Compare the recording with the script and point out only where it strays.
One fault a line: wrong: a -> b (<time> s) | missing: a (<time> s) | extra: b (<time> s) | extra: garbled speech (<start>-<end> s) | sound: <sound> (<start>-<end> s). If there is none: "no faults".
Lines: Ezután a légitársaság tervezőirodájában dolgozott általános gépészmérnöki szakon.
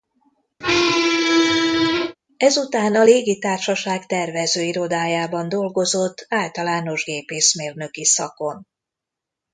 sound: squeak (0.6-2.2 s)